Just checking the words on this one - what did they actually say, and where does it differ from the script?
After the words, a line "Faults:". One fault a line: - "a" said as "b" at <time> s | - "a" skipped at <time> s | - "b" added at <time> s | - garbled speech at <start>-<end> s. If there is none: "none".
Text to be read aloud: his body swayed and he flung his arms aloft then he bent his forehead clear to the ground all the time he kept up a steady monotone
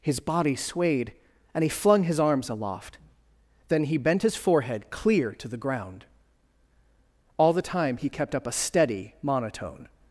his body swayed and he flung his arms aloft then he bent his forehead clear to the ground all the time he kept up a steady monotone
Faults:
none